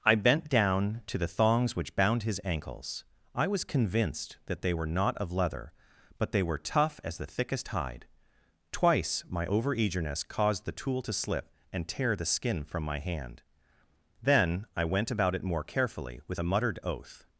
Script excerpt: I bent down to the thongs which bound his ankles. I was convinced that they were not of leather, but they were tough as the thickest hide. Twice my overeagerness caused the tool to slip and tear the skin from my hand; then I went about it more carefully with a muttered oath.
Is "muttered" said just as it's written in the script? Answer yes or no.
yes